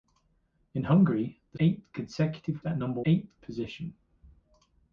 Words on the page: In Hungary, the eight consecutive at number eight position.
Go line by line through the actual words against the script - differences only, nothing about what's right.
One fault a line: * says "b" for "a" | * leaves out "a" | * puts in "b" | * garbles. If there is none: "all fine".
all fine